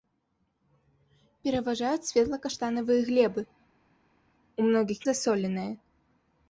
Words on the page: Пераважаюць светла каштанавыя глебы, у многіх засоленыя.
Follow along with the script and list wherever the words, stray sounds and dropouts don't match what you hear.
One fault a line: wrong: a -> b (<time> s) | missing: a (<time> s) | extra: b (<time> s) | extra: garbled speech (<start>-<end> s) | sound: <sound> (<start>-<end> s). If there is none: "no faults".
no faults